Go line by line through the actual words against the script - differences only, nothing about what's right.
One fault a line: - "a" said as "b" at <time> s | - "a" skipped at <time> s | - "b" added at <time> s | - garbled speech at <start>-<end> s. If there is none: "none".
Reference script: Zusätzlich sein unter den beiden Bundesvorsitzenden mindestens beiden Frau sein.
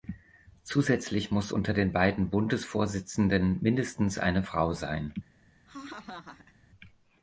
- "sein" said as "muss" at 1.3 s
- "beiden" said as "eine" at 4.2 s